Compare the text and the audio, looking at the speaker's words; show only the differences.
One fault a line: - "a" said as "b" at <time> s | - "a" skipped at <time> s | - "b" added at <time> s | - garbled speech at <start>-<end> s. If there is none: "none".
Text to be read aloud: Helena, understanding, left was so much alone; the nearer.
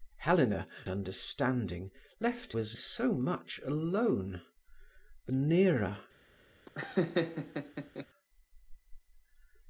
none